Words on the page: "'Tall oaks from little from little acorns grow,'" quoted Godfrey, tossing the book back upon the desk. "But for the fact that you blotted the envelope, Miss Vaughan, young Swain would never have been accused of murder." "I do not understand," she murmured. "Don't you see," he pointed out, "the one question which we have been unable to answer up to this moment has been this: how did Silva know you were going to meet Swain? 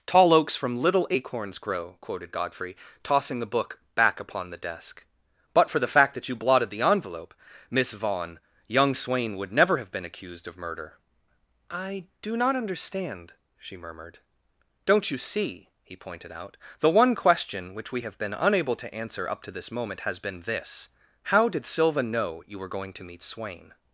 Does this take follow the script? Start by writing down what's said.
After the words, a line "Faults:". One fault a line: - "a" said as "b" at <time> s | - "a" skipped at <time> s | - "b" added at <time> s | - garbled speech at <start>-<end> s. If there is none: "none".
"'Tall oaks from little acorns grow,'" quoted Godfrey, tossing the book back upon the desk. "But for the fact that you blotted the envelope, Miss Vaughan, young Swain would never have been accused of murder." "I do not understand," she murmured. "Don't you see," he pointed out, "the one question which we have been unable to answer up to this moment has been this: how did Silva know you were going to meet Swain?
Faults:
- "from little" skipped at 1.1 s